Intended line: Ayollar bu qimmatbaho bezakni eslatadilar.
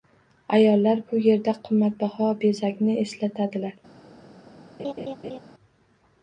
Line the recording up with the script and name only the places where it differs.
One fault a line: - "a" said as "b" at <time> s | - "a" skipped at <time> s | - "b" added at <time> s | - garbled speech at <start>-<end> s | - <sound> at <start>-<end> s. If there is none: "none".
- "yerda" added at 1.2 s
- laugh at 4.8-5.4 s